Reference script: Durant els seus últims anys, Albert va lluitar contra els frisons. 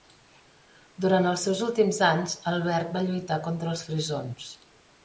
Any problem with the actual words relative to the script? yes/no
no